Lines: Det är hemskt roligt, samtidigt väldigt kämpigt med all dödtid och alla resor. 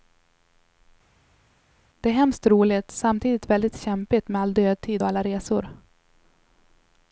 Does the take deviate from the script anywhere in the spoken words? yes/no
no